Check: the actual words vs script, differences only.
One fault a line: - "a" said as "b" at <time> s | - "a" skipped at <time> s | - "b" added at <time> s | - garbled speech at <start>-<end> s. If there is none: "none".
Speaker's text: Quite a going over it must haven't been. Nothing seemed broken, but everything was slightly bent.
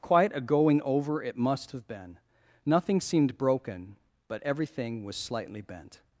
- "haven't" said as "have" at 1.7 s